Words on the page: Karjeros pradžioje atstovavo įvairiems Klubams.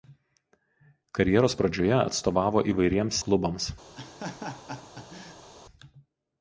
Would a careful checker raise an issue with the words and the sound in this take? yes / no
yes